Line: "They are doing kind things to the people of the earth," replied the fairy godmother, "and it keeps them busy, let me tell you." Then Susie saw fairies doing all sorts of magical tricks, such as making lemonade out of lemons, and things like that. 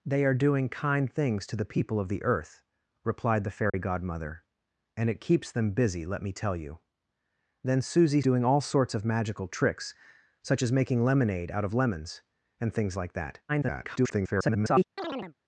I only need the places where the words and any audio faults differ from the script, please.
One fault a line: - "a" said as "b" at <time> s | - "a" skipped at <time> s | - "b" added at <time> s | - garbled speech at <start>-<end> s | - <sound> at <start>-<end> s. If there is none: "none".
- dropout at 3.7-3.7 s
- "saw fairies" skipped at 8.2 s
- garbled speech at 13.5-14.8 s
- chirp at 15.0-15.3 s